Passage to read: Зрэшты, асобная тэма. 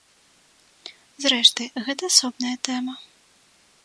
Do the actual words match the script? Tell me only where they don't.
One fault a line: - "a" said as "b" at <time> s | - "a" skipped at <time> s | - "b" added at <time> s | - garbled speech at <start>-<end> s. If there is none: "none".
- "гэта" added at 1.9 s